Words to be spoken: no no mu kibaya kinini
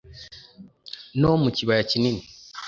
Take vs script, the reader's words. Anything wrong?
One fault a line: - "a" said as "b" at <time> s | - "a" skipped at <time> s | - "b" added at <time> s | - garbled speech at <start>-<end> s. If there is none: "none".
- "no" skipped at 1.3 s